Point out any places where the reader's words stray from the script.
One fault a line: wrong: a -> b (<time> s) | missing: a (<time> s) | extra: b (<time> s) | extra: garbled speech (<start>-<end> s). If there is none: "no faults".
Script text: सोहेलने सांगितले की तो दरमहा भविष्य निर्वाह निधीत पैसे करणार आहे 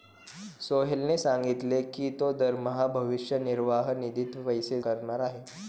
no faults